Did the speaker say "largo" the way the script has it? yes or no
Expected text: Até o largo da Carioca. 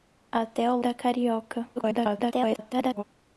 no